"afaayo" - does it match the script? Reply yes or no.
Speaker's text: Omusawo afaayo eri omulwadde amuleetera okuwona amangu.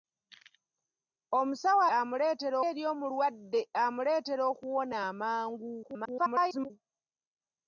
no